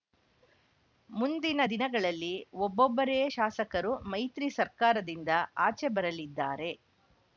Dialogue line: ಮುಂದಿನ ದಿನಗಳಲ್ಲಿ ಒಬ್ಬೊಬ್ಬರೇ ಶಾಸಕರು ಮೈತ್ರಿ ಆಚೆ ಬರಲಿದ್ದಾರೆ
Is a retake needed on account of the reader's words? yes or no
yes